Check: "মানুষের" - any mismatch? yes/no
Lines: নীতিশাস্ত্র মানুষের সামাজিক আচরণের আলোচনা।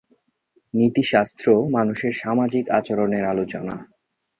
no